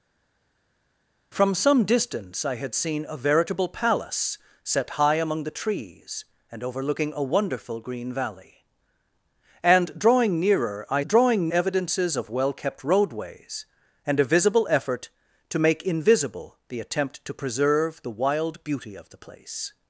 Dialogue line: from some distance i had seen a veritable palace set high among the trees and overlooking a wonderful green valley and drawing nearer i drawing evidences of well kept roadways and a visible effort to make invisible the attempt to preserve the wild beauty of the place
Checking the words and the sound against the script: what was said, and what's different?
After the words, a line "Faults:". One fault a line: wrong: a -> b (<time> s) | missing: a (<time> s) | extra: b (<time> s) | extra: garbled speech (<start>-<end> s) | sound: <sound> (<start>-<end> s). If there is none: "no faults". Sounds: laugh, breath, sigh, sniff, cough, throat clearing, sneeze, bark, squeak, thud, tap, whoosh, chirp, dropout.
from some distance i had seen a veritable palace set high among the trees and overlooking a wonderful green valley and drawing nearer i drawing evidences of well kept roadways and a visible effort to make invisible the attempt to preserve the wild beauty of the place
Faults:
no faults